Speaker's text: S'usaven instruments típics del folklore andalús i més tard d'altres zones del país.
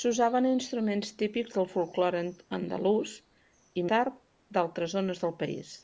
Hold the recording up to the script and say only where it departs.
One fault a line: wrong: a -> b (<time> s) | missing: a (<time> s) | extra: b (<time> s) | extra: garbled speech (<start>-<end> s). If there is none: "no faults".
missing: més (3.8 s)